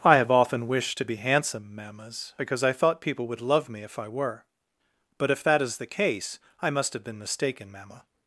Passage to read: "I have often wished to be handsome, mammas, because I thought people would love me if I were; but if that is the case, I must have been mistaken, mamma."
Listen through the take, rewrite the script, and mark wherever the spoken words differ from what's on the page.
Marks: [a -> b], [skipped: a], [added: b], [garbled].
"I have often wished to be handsome, mammas, because I thought people would love me if I were; but if that is the case, I must have been mistaken, mamma."